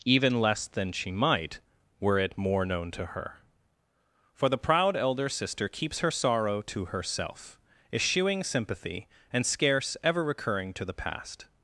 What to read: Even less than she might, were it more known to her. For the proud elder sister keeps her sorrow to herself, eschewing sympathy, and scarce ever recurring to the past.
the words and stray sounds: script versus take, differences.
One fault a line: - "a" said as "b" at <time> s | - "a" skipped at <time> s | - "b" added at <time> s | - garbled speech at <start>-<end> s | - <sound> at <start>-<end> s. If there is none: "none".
none